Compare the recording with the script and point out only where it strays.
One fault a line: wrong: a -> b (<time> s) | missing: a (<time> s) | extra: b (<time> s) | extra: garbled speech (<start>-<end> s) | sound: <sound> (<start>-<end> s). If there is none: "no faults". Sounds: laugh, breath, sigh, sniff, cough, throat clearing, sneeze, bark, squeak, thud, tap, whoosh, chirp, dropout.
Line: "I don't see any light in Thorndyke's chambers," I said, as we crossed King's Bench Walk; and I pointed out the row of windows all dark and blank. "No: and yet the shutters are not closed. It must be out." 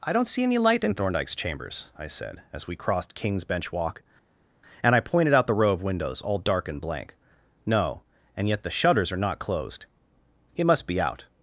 no faults